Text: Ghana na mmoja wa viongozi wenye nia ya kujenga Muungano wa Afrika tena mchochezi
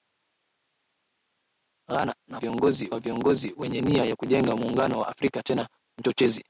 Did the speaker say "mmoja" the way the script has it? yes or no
no